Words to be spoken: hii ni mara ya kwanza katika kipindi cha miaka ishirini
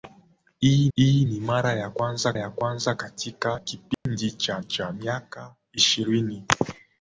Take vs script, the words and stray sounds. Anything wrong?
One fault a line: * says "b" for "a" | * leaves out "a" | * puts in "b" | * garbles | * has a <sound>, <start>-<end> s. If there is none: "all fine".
* puts in "hii"
* puts in "ya kwanza"
* has a dropout, 3.9-4.1 s
* puts in "cha"